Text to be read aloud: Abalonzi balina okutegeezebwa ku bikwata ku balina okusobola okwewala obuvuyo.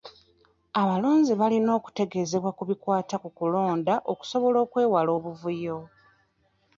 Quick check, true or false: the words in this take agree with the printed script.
false